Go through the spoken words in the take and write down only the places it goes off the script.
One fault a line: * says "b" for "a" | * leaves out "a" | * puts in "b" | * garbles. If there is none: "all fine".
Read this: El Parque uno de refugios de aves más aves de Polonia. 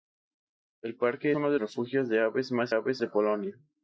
all fine